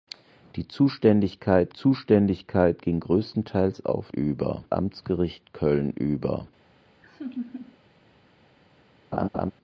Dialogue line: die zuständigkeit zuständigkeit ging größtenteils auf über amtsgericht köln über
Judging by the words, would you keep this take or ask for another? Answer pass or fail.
pass